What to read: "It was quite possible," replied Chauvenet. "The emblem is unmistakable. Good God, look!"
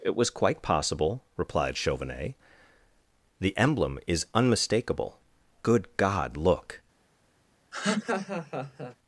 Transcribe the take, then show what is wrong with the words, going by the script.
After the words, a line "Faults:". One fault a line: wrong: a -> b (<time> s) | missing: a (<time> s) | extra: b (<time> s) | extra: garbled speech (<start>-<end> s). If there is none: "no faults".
"It was quite possible," replied Chauvenet. "The emblem is unmistakable. Good God, look!"
Faults:
no faults